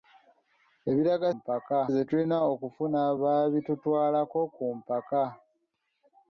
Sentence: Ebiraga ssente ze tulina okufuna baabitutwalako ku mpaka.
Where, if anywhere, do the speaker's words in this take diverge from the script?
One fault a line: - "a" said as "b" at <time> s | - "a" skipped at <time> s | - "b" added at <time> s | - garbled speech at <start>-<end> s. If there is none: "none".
- "ssente" said as "mpaka" at 1.4 s